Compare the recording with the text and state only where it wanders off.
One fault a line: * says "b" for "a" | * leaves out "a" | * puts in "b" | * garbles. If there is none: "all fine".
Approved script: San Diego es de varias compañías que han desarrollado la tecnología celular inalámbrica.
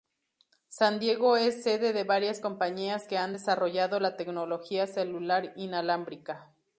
* puts in "sede"